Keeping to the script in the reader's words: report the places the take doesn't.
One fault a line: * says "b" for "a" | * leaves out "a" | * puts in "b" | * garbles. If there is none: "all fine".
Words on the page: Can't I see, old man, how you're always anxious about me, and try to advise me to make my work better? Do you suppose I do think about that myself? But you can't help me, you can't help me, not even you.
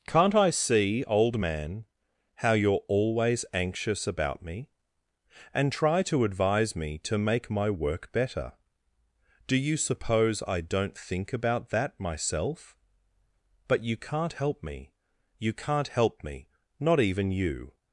* says "don't" for "do"